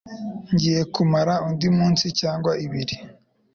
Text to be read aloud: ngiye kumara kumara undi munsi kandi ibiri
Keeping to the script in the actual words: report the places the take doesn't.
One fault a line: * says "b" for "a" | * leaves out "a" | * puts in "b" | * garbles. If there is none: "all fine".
* leaves out "kumara"
* says "cyangwa" for "kandi"